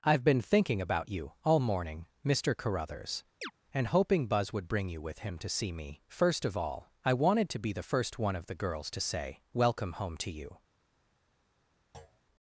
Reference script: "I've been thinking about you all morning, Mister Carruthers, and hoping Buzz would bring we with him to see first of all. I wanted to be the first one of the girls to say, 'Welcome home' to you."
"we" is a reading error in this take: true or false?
true